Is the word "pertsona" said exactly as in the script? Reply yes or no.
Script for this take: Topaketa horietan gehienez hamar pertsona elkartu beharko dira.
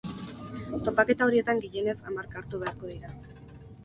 no